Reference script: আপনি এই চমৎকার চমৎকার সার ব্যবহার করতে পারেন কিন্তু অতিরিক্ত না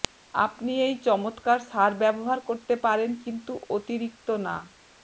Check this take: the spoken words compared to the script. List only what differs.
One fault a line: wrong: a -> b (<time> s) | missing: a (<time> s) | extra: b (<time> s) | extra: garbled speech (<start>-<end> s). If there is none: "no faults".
missing: চমৎকার (1.6 s)